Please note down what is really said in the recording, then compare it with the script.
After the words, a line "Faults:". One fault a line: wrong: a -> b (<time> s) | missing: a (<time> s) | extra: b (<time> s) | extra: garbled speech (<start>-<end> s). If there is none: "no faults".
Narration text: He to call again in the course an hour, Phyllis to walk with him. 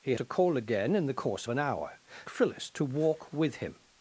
He to call again in the course an hour, Phyllis to walk with him.
Faults:
no faults